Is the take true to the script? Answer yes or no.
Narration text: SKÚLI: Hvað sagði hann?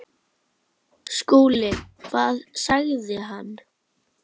yes